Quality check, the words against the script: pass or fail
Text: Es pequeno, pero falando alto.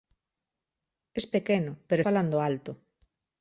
pass